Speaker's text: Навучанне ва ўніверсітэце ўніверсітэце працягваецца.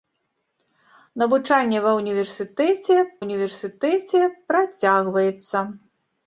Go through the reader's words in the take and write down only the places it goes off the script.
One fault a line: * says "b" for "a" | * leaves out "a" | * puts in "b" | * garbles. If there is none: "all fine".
all fine